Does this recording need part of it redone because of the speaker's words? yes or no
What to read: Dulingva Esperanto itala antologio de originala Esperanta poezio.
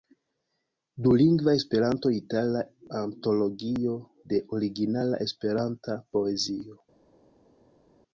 no